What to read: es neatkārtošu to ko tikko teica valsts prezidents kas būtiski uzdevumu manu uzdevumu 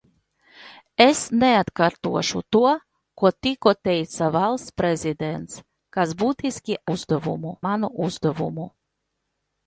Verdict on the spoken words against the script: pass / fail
pass